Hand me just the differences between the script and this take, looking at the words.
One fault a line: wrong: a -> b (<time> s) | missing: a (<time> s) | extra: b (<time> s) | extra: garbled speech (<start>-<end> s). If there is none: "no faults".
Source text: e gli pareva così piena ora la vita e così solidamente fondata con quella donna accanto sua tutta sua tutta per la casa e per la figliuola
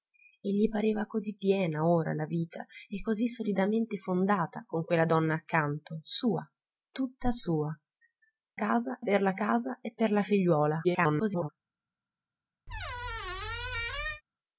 wrong: tutta -> casa (8.5 s)
extra: garbled speech (10.8-11.5 s)